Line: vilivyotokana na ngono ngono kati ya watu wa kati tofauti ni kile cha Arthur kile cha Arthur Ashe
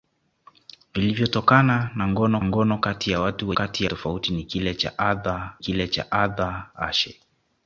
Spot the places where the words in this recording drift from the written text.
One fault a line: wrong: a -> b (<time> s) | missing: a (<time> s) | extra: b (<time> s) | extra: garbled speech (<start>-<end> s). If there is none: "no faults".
no faults